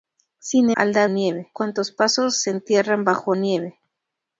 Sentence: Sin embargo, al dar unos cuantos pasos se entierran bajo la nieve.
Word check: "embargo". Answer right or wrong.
wrong